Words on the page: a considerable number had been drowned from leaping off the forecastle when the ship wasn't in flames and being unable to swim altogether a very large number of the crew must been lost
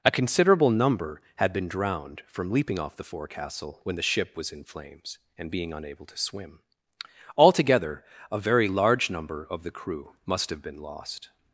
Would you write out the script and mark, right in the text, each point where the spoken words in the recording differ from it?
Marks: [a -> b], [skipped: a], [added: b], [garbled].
a considerable number had been drowned from leaping off the forecastle when the ship [wasn't -> was] in flames and being unable to swim altogether a very large number of the crew must [added: have] been lost